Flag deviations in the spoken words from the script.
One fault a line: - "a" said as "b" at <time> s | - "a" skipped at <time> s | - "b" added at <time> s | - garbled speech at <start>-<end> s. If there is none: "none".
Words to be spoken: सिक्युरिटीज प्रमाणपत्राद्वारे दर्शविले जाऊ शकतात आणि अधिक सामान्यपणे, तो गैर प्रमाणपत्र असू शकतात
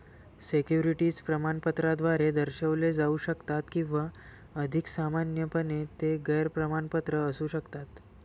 - "आणि" said as "किंवा" at 3.7 s
- "तो" said as "ते" at 6.0 s